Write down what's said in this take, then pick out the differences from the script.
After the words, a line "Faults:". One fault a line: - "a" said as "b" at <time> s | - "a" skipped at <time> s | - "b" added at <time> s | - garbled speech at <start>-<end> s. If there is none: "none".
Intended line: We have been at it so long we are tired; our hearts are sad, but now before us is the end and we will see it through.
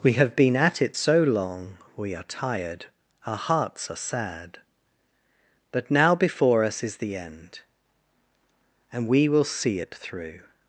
We have been at it so long we are tired; our hearts are sad, but now before us is the end and we will see it through.
Faults:
none